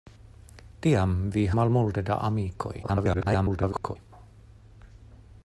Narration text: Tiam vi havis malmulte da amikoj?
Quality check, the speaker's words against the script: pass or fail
fail